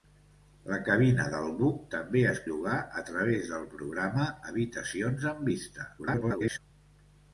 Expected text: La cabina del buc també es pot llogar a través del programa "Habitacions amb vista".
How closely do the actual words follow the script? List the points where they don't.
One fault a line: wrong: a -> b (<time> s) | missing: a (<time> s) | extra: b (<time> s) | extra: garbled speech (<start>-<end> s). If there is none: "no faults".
missing: pot (2.4 s)
extra: garbled speech (6.0-6.6 s)